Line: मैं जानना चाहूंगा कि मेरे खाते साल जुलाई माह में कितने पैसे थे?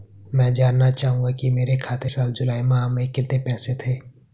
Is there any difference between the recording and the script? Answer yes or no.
no